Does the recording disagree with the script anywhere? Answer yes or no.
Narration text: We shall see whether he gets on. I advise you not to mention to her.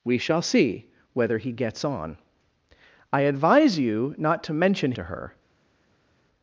no